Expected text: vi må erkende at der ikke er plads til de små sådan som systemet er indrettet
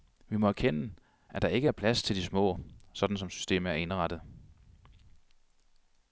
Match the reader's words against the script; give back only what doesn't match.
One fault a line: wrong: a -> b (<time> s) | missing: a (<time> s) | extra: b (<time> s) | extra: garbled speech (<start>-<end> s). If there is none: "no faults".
no faults